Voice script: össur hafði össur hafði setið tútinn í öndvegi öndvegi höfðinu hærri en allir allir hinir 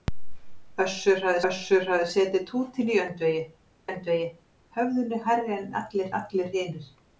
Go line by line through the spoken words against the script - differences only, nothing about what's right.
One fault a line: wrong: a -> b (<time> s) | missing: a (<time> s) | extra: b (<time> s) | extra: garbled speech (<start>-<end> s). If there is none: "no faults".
no faults